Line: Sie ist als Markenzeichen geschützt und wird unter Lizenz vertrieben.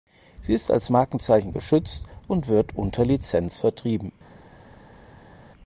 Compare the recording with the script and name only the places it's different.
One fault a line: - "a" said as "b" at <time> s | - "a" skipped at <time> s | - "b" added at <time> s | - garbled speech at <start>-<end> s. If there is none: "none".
none